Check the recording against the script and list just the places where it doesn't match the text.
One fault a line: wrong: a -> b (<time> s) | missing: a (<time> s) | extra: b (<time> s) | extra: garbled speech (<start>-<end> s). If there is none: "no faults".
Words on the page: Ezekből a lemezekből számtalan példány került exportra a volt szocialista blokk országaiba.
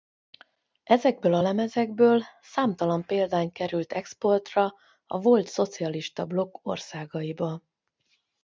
no faults